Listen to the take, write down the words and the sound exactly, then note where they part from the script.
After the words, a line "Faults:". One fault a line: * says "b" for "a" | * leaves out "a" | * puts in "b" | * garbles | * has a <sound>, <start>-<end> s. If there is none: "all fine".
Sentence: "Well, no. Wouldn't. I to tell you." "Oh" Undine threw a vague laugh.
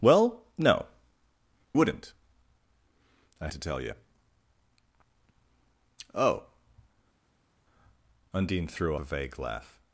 "Well, no. Wouldn't. I to tell you." "Oh" Undine threw a vague laugh.
Faults:
all fine